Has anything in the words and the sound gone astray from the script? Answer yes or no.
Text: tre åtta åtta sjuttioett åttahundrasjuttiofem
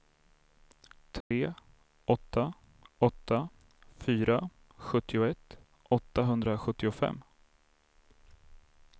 yes